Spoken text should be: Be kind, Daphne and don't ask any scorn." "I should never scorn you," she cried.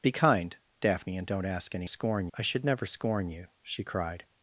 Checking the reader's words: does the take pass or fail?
pass